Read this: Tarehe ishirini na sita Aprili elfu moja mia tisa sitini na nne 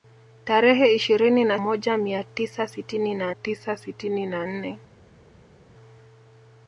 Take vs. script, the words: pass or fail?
fail